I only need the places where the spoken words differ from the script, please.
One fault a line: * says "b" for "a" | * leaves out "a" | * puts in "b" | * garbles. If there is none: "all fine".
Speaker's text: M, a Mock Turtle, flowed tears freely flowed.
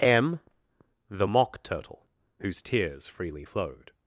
* says "the" for "a"
* says "whose" for "flowed"